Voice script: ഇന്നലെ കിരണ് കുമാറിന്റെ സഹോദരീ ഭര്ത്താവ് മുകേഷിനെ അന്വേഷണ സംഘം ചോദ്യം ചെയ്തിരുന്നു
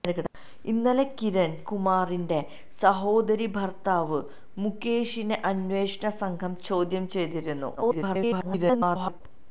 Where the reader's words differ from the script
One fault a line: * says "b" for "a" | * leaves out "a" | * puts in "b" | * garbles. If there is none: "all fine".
* garbles